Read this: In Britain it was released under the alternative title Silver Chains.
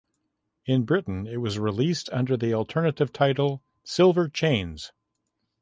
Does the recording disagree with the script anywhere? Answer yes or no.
no